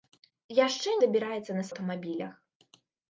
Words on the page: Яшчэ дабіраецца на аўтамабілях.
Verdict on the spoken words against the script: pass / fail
pass